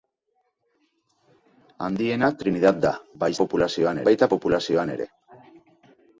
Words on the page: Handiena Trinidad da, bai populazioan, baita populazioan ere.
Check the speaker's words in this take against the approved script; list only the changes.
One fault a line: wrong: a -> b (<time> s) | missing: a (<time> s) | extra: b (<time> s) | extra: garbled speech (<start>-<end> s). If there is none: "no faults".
no faults